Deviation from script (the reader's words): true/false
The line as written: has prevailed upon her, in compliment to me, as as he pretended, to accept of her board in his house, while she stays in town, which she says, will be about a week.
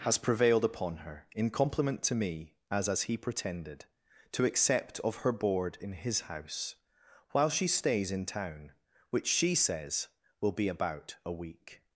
false